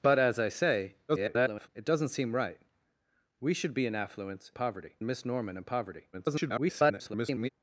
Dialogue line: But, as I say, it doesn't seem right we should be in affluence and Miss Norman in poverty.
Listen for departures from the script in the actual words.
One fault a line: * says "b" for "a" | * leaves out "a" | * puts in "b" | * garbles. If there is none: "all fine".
* garbles
* says "poverty" for "and"
* garbles